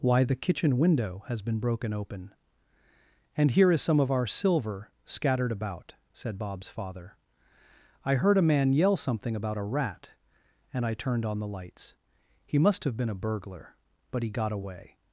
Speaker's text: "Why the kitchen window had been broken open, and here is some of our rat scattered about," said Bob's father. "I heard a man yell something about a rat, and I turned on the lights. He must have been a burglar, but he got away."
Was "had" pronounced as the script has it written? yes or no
no